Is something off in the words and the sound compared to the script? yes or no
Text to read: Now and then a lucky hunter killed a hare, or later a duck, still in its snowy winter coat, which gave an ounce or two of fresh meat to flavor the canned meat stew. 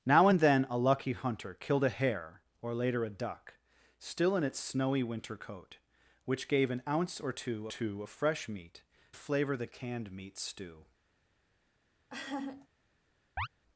yes